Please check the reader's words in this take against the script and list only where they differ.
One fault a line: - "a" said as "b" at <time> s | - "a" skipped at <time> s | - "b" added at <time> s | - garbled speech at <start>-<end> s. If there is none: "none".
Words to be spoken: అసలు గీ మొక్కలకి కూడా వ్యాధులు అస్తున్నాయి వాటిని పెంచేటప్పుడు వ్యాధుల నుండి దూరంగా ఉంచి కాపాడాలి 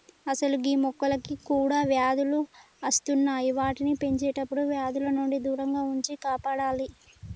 none